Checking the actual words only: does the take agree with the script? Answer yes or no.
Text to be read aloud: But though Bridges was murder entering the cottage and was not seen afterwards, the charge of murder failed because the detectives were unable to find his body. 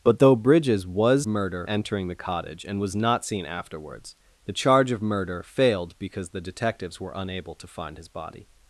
yes